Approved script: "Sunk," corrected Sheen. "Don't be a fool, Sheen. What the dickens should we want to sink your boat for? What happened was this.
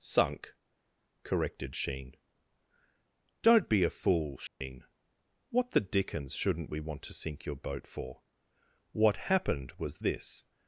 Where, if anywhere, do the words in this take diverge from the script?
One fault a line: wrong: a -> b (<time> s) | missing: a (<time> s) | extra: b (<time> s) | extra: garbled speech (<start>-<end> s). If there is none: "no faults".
wrong: should -> shouldn't (6.3 s)